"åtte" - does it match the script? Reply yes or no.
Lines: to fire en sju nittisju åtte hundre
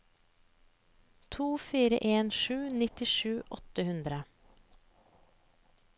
yes